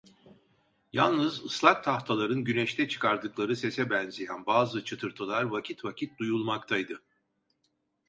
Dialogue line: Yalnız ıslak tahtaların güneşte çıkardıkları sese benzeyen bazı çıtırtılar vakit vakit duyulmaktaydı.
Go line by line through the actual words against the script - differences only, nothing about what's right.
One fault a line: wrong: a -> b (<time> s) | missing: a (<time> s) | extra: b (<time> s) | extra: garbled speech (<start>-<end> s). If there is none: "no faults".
no faults